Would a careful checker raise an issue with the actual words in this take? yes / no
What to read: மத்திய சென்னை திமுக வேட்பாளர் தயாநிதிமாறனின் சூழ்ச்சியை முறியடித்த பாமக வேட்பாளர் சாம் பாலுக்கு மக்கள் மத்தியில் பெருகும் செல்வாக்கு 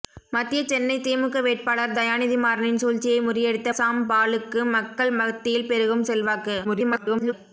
yes